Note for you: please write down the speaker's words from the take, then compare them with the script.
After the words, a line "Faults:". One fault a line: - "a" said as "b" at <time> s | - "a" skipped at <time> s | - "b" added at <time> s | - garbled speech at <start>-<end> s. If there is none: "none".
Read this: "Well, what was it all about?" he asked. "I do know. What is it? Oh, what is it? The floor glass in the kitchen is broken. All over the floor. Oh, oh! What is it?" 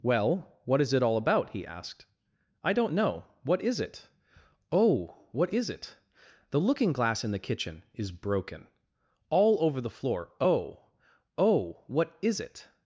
"Well, what is it all about?" he asked. "I don't know. What is it? Oh, what is it? The looking glass in the kitchen is broken. All over the floor. Oh, oh! What is it?"
Faults:
- "was" said as "is" at 0.8 s
- "do" said as "don't" at 2.7 s
- "floor" said as "looking" at 6.6 s